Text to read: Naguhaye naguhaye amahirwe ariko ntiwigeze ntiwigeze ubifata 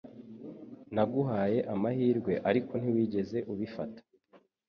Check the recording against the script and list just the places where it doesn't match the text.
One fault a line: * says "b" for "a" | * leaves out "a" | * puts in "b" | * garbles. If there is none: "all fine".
* leaves out "naguhaye"
* leaves out "ntiwigeze"